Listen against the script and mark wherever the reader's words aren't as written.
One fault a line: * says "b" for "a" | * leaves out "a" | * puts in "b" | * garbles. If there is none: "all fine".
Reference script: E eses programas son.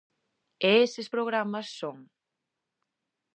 all fine